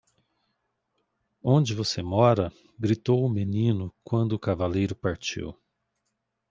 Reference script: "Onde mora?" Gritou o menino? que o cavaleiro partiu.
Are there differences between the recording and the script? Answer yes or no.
yes